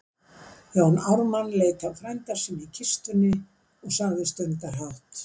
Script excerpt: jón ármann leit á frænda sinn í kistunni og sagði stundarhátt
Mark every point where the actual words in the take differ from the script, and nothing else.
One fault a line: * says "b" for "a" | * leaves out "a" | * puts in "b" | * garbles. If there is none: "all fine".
all fine